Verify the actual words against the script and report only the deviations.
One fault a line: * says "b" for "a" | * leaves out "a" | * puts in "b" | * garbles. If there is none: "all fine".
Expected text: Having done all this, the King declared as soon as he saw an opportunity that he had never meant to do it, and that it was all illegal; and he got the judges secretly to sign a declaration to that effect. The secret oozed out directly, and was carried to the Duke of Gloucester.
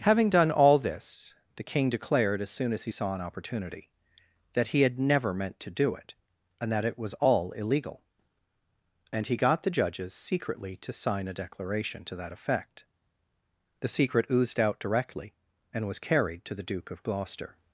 all fine